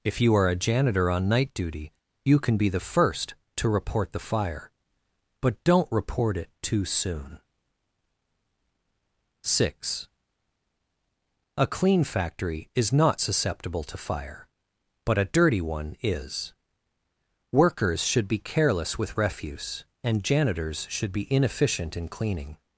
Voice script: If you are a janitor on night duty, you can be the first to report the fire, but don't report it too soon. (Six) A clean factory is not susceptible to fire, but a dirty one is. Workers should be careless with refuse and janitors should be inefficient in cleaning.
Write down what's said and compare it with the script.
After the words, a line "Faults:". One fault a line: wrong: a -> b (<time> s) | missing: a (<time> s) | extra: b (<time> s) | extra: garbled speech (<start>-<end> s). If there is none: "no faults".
If you are a janitor on night duty, you can be the first to report the fire, but don't report it too soon. (Six) A clean factory is not susceptible to fire, but a dirty one is. Workers should be careless with refuse and janitors should be inefficient in cleaning.
Faults:
no faults